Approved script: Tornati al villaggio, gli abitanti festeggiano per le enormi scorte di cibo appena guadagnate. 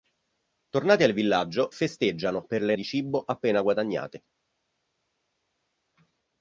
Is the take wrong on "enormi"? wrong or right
wrong